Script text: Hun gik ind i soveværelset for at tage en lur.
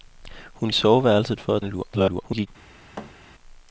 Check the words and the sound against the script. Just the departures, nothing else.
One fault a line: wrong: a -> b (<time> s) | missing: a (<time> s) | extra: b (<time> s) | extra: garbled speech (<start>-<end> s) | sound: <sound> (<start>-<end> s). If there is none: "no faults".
missing: gik ind (0.7 s)
missing: tage (1.6 s)
extra: garbled speech (1.9-2.5 s)
sound: thud (3.0-3.2 s)